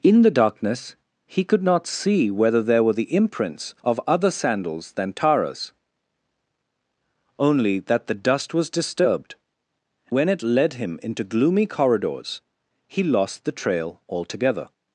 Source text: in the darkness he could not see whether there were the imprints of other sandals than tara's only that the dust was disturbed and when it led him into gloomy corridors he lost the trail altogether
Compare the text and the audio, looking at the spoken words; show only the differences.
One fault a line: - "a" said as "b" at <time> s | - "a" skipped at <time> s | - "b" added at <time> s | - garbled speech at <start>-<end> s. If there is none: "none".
- "and" skipped at 9.4 s